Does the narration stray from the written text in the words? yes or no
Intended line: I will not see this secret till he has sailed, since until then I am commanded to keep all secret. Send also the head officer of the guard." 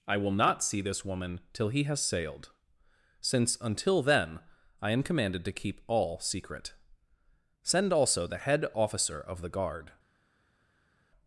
yes